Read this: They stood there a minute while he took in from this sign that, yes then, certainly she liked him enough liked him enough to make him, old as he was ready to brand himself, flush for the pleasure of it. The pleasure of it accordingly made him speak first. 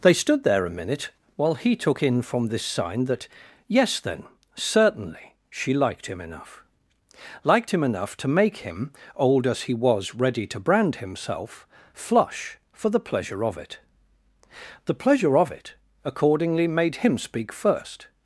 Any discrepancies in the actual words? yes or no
no